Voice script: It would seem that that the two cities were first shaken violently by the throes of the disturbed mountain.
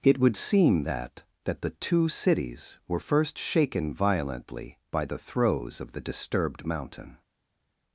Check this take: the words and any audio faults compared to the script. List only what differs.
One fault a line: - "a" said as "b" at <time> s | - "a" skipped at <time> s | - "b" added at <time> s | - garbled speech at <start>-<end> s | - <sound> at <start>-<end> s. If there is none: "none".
none